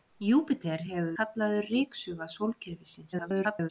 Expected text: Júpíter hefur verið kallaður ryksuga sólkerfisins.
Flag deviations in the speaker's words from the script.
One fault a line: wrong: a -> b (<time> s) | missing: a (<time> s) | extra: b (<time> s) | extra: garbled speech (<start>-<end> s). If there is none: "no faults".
missing: verið (1.1 s)
extra: garbled speech (3.1-3.7 s)